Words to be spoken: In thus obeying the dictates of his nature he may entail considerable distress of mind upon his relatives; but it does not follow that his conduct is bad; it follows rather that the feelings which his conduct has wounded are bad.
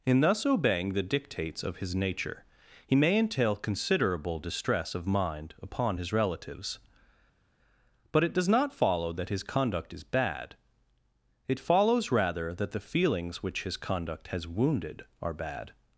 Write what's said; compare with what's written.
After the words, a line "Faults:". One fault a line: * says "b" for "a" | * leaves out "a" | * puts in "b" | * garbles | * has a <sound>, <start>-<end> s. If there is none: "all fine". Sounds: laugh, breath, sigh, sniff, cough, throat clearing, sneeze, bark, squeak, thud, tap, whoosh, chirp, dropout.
In thus obeying the dictates of his nature he may entail considerable distress of mind upon his relatives; but it does not follow that his conduct is bad; it follows rather that the feelings which his conduct has wounded are bad.
Faults:
all fine